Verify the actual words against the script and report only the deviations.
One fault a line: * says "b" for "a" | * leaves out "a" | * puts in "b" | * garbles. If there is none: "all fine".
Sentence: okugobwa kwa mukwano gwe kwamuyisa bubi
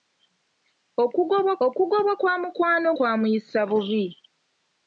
* puts in "okugobwa"
* leaves out "gwe"